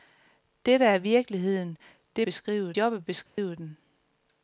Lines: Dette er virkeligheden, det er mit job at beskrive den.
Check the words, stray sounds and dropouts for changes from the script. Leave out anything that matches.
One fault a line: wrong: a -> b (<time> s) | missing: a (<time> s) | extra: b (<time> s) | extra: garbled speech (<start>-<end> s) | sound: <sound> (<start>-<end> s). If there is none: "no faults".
wrong: mit -> beskrive (2.2 s)
sound: dropout (3.3-3.4 s)